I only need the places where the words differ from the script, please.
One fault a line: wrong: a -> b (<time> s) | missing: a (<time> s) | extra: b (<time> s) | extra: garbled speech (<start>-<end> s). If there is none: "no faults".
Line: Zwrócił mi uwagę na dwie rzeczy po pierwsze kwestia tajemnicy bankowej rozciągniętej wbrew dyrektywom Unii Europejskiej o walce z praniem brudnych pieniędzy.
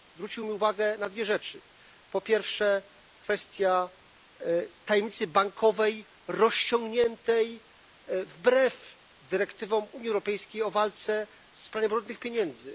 no faults